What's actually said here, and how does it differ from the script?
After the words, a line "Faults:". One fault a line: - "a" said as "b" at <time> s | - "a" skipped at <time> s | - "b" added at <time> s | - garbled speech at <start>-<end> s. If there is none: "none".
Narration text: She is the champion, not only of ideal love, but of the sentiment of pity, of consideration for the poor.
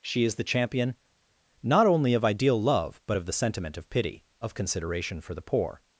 She is the champion, not only of ideal love, but of the sentiment of pity, of consideration for the poor.
Faults:
none